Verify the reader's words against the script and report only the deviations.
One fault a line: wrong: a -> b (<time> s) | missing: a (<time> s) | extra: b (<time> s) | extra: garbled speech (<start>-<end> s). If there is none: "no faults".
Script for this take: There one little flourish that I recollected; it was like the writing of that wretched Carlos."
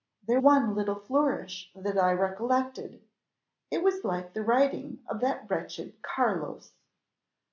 no faults